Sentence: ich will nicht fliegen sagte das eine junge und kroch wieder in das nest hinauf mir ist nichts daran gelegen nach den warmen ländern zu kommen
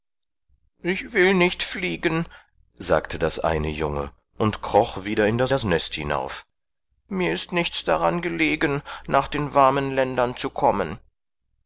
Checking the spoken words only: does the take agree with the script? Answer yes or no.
no